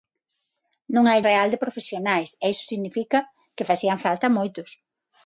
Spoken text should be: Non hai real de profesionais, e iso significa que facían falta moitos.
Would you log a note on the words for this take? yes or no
no